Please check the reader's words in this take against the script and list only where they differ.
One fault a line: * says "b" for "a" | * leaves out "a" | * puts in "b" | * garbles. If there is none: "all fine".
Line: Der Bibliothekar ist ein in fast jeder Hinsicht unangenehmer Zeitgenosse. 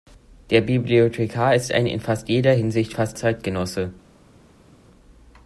* says "fast" for "unangenehmer"